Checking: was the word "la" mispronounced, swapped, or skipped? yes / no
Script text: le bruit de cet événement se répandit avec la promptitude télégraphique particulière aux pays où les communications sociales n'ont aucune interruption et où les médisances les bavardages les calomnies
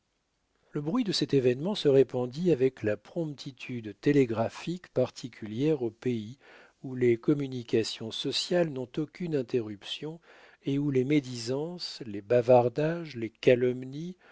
no